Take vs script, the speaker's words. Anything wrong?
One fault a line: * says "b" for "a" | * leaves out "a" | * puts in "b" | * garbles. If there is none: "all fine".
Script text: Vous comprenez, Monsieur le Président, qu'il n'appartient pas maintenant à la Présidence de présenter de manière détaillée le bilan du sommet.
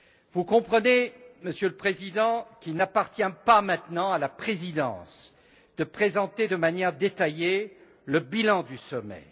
all fine